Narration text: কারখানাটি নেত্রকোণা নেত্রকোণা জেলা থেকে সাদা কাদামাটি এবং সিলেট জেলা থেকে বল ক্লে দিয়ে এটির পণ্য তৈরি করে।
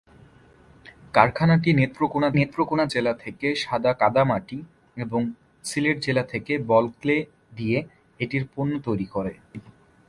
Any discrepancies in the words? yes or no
no